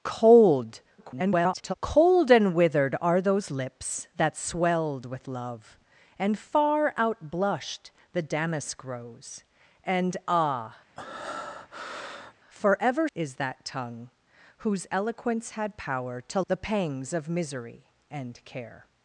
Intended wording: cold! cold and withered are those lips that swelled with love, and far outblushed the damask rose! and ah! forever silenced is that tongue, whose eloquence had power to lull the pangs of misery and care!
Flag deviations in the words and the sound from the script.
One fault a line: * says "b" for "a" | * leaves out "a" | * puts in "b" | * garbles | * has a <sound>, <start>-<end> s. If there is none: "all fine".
* garbles
* has a breath, 11.0-12.3 s
* leaves out "silenced"
* leaves out "lull"